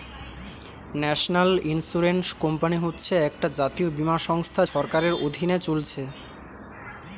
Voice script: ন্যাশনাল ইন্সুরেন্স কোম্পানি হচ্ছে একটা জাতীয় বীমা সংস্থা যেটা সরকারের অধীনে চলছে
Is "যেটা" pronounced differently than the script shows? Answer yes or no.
yes